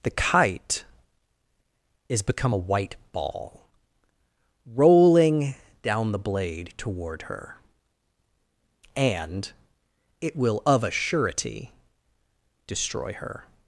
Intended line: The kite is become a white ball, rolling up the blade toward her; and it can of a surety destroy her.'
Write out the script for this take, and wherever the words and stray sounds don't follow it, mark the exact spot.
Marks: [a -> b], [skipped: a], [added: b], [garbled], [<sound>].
The kite is become a white ball, rolling [up -> down] the blade toward her; and it [can -> will] of a surety destroy her.'